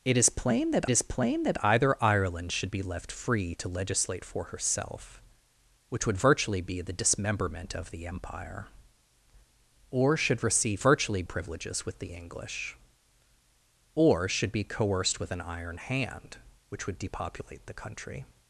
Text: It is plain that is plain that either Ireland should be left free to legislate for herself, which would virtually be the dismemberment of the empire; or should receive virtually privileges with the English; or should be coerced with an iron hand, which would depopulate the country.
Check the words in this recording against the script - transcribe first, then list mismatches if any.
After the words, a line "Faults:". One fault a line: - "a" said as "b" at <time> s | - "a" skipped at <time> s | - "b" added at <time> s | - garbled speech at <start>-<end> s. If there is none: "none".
It is plain that is plain that either Ireland should be left free to legislate for herself, which would virtually be the dismemberment of the empire; or should receive virtually privileges with the English; or should be coerced with an iron hand, which would depopulate the country.
Faults:
none